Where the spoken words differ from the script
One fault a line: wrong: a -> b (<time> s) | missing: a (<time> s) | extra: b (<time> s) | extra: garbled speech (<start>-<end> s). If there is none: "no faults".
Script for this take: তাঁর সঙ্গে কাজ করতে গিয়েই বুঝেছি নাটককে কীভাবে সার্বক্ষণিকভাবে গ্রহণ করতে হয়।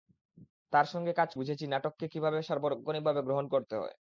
missing: করতে গিয়েই (1.3 s)